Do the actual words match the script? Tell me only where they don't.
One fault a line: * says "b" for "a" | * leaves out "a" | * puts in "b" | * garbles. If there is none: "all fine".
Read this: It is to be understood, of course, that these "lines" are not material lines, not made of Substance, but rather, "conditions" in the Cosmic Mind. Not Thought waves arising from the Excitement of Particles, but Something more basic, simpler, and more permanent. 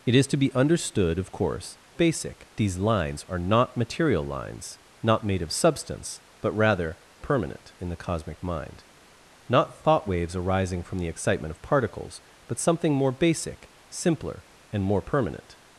* says "basic" for "that"
* says "permanent" for "conditions"